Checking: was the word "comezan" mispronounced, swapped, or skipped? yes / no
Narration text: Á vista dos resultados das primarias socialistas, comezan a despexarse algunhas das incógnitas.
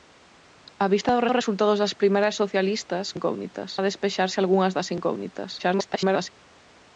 yes